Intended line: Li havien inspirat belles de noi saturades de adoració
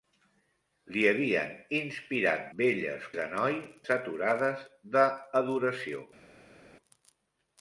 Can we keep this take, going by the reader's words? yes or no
yes